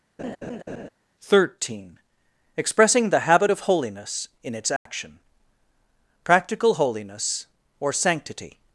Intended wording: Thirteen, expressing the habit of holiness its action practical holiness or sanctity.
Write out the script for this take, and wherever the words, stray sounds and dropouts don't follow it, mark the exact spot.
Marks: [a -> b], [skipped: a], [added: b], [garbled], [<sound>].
[laugh] Thirteen, expressing the habit of holiness [added: in] its action [dropout] practical holiness or sanctity.